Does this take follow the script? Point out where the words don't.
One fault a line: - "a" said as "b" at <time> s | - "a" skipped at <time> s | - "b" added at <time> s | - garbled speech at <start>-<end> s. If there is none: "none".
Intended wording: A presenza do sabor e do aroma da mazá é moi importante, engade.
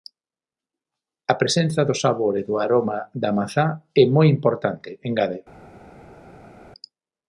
none